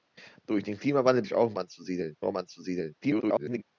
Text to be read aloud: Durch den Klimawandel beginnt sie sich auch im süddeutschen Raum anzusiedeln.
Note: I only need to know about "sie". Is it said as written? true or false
false